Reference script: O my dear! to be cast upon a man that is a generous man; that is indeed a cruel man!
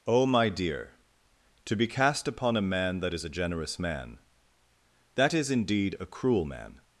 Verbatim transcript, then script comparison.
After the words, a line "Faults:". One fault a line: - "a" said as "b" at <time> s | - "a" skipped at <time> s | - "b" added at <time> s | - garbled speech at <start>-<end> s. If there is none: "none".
O my dear! to be cast upon a man that is a generous man; that is indeed a cruel man!
Faults:
none